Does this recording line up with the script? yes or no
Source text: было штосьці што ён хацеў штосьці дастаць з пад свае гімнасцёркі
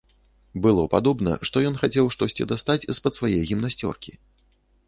no